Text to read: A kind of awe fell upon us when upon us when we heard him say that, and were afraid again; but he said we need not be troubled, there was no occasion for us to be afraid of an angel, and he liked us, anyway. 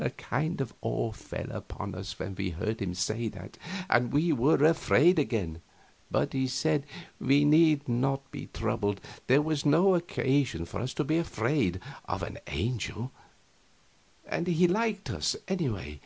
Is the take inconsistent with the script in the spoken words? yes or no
yes